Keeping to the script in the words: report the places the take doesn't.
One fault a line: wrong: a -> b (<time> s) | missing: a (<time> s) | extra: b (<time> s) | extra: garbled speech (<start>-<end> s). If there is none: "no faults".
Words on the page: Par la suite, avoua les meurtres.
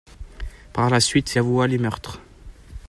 no faults